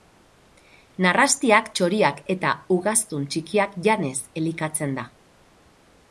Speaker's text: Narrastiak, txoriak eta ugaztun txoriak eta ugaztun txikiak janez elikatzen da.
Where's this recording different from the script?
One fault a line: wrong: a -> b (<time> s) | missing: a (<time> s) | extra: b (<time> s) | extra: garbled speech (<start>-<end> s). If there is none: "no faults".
missing: txoriak eta ugaztun (3.3 s)